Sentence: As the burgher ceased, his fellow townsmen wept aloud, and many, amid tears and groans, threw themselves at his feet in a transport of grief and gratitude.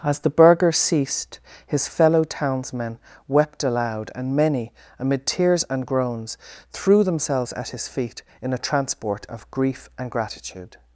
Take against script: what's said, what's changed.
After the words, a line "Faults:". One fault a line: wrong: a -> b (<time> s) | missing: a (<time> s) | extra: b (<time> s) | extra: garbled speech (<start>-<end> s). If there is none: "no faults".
As the burgher ceased, his fellow townsmen wept aloud, and many, amid tears and groans, threw themselves at his feet in a transport of grief and gratitude.
Faults:
no faults